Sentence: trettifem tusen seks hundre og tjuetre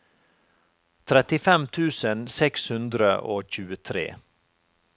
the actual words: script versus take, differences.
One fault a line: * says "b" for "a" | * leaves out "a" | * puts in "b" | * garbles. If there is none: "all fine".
all fine